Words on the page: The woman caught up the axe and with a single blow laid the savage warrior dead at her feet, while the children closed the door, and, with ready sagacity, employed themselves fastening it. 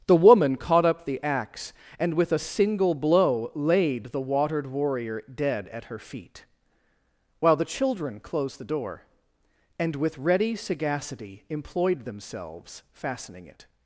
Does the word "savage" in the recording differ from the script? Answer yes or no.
yes